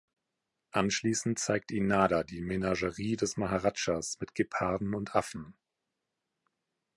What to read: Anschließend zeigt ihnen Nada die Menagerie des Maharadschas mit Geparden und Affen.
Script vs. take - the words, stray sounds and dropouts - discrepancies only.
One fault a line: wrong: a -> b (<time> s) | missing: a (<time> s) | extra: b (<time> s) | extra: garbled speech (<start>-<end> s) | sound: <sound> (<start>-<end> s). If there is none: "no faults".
no faults